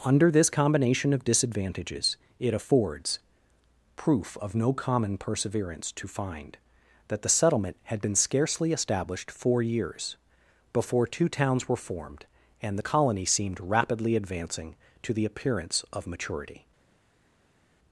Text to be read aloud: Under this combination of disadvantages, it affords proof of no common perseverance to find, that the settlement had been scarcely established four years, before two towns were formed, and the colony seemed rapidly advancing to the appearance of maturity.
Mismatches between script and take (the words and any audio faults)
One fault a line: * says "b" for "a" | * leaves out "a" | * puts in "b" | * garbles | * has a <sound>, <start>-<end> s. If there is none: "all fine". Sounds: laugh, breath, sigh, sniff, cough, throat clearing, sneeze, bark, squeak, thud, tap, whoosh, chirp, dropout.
all fine